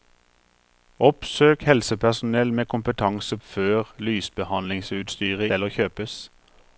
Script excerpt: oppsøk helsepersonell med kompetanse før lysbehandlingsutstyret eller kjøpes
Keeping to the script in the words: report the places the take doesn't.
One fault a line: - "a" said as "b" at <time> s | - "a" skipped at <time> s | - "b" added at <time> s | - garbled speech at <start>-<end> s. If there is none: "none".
none